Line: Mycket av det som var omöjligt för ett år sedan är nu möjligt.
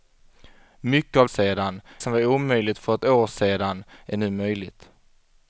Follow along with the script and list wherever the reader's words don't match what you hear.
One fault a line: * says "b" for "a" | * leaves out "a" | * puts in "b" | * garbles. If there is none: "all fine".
* says "sedan" for "det"